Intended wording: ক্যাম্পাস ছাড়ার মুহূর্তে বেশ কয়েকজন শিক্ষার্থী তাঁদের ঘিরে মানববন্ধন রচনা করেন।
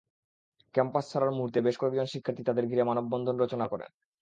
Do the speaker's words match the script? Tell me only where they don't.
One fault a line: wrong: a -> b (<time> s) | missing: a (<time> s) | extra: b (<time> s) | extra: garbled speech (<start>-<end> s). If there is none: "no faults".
no faults